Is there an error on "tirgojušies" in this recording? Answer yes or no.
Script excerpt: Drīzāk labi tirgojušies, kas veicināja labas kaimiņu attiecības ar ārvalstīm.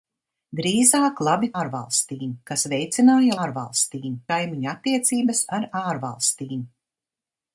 yes